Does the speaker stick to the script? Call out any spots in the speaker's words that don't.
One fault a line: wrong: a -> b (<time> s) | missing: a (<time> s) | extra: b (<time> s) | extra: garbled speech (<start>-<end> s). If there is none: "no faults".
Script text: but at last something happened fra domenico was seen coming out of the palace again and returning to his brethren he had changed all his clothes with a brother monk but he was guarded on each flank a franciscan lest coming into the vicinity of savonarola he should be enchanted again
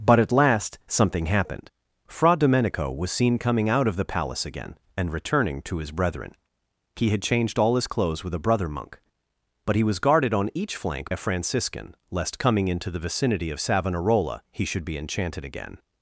no faults